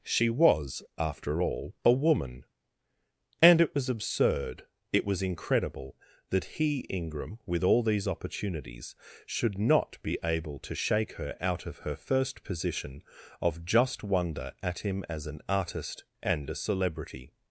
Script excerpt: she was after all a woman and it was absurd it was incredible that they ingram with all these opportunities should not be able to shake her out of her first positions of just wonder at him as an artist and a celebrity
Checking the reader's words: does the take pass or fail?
fail